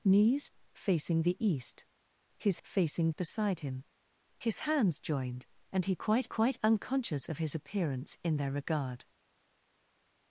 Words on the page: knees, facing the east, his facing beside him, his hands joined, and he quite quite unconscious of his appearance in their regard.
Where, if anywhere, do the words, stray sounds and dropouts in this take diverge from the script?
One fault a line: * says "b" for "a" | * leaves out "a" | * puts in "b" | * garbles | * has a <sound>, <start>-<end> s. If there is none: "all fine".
all fine